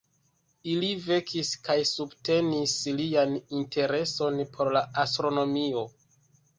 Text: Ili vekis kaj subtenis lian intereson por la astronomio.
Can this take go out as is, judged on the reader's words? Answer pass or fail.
pass